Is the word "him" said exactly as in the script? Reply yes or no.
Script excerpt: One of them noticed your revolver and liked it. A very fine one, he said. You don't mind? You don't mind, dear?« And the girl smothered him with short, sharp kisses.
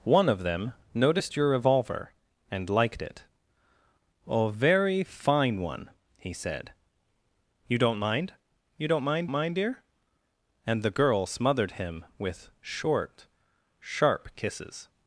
yes